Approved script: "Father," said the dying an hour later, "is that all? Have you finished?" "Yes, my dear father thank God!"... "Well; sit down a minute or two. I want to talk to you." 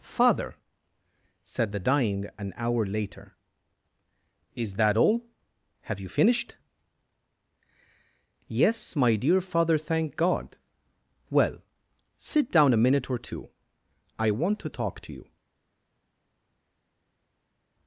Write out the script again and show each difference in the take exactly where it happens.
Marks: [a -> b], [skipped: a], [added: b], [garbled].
"Father," said the dying an hour later, "is that all? Have you finished?" "Yes, my dear father thank God!"... "Well; sit down a minute or two. I want to talk to you."